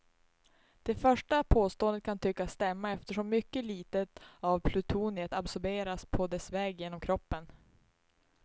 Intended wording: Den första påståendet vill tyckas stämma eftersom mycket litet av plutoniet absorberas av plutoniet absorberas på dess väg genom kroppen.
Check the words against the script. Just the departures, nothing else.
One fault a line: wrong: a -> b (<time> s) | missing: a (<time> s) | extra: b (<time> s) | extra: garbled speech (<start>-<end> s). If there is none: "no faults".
wrong: Den -> Det (0.8 s)
wrong: vill -> kan (2.0 s)
missing: av plutoniet absorberas (6.1 s)